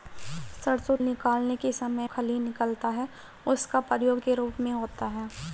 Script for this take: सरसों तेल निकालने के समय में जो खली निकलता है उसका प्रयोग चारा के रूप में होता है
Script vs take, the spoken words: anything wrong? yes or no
yes